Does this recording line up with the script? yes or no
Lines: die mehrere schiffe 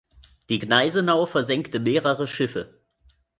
no